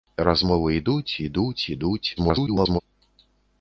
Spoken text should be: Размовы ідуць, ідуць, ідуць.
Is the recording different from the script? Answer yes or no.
yes